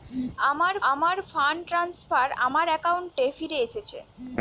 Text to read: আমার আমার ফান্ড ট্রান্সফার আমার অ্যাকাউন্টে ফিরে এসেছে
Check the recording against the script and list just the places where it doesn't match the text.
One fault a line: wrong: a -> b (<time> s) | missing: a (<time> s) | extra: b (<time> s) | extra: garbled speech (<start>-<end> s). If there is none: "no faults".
no faults